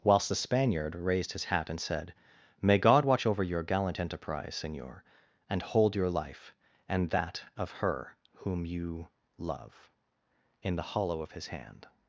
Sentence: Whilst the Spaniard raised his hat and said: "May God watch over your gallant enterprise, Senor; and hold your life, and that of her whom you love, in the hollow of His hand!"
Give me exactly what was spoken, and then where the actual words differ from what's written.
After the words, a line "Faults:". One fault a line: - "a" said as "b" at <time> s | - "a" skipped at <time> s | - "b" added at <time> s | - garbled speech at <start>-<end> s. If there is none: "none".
Whilst the Spaniard raised his hat and said: "May God watch over your gallant enterprise, Senor; and hold your life, and that of her whom you love, in the hollow of His hand!"
Faults:
none